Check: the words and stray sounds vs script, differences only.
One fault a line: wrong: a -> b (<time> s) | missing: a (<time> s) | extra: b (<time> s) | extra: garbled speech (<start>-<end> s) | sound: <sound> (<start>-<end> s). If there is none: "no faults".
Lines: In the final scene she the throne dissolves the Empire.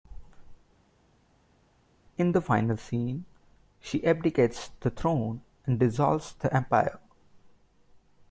extra: abdicates (4.1 s)
extra: and (5.7 s)